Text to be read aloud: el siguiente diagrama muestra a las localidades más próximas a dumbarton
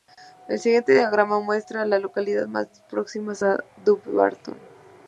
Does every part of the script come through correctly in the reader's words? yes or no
yes